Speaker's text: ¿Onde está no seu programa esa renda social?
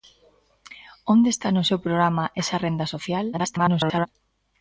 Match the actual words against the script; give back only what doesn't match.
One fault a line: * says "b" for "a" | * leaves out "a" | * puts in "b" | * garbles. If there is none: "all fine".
* garbles